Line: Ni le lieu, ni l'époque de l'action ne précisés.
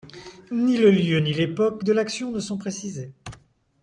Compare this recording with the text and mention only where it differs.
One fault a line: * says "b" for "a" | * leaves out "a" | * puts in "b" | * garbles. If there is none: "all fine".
* puts in "sont"